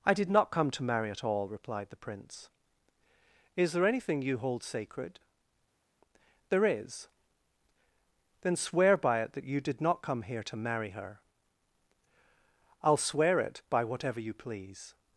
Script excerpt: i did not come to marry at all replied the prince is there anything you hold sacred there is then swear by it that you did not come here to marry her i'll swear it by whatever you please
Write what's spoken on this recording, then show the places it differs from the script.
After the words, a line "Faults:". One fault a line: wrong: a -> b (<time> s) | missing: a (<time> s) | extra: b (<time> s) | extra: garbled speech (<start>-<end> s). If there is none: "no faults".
i did not come to marry at all replied the prince is there anything you hold sacred there is then swear by it that you did not come here to marry her i'll swear it by whatever you please
Faults:
no faults